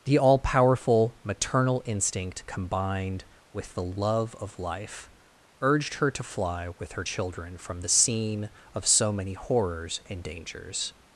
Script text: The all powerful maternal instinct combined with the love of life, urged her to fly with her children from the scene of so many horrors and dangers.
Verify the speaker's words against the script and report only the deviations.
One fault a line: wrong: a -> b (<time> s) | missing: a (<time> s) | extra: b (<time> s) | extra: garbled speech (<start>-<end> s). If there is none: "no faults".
no faults